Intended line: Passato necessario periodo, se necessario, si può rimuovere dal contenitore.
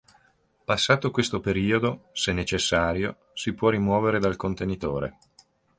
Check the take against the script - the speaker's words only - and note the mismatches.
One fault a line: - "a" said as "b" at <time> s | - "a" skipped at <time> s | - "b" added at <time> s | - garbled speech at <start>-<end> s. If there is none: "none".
- "necessario" said as "questo" at 1.1 s